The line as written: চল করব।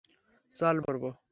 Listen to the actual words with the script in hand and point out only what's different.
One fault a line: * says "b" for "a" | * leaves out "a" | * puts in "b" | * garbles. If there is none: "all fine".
all fine